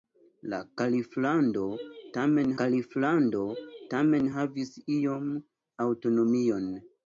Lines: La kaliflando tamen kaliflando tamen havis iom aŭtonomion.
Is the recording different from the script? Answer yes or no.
no